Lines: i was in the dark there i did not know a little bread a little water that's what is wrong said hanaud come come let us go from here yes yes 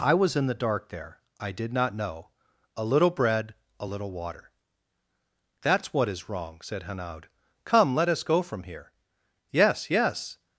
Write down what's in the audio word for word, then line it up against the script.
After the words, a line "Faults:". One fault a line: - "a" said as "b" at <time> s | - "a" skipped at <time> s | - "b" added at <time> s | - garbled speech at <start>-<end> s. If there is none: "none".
i was in the dark there i did not know a little bread a little water that's what is wrong said hanaud come let us go from here yes yes
Faults:
- "come" skipped at 7.9 s